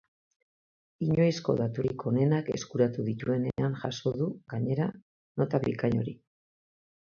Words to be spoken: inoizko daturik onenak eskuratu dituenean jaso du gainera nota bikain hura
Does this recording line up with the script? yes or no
no